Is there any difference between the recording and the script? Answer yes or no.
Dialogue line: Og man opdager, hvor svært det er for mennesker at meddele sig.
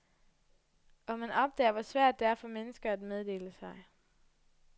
no